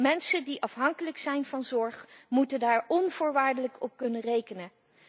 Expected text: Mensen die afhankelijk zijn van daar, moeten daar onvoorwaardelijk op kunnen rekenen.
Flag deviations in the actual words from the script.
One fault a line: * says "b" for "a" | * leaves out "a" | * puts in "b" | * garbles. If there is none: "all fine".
* says "zorg" for "daar"